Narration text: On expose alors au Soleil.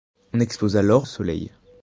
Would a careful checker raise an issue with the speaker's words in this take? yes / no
no